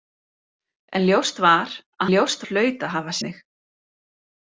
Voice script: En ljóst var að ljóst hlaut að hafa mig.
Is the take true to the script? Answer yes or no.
yes